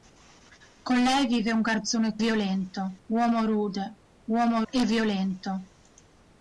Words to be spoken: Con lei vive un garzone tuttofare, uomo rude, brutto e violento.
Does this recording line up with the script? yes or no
no